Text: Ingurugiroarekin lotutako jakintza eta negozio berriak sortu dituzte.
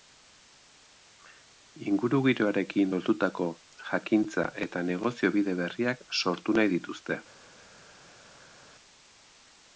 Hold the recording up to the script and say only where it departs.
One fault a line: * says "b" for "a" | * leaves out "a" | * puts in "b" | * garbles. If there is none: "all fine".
* puts in "bide"
* puts in "nahi"